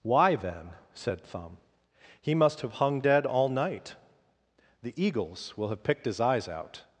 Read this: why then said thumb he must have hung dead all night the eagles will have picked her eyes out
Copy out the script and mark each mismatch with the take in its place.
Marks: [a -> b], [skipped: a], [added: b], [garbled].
why then said thumb he must have hung dead all night the eagles will have picked [her -> his] eyes out